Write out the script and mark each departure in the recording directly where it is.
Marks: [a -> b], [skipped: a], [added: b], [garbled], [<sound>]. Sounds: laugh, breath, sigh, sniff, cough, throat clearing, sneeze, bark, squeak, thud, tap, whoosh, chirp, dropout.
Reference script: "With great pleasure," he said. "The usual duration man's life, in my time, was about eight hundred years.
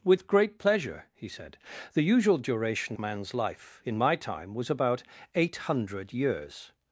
"With great pleasure," he said. "The usual duration man's life, in my time, was about eight hundred years.